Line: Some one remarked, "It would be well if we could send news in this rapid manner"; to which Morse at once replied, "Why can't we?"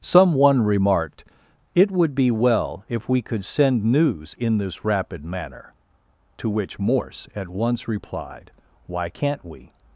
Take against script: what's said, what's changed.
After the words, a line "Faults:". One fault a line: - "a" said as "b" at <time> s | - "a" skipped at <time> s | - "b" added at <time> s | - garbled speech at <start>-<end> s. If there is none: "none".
Some one remarked, "It would be well if we could send news in this rapid manner"; to which Morse at once replied, "Why can't we?"
Faults:
none